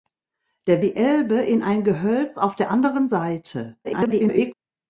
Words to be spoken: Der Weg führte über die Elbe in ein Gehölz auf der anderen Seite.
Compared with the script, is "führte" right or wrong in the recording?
wrong